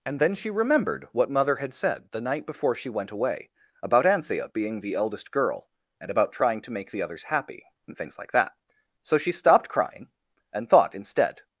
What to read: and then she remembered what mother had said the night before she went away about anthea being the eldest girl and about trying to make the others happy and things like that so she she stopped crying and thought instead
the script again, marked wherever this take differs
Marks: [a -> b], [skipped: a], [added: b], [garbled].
and then she remembered what mother had said the night before she went away about anthea being the eldest girl and about trying to make the others happy and things like that so she [skipped: she] stopped crying and thought instead